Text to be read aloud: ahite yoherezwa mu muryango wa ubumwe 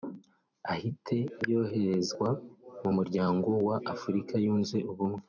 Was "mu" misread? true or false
false